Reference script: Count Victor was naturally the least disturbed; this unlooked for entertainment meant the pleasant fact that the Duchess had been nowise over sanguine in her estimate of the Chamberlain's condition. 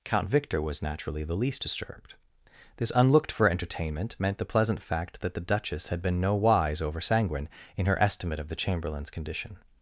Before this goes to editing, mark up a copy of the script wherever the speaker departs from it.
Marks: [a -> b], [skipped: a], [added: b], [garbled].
Count Victor was naturally the least disturbed; this unlooked for entertainment meant the pleasant fact that the Duchess had been nowise over sanguine in her estimate of the Chamberlain's condition.